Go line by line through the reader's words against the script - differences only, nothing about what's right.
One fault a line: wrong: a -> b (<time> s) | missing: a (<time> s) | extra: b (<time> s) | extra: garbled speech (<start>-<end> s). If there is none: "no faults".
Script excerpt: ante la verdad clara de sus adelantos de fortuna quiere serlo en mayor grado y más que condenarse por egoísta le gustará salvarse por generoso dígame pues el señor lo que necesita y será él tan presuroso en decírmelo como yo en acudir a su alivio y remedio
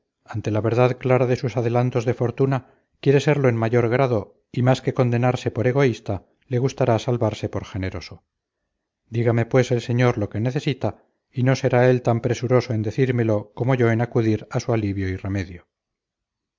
extra: no (11.4 s)